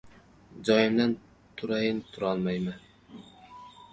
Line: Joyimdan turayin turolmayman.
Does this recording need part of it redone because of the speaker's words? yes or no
no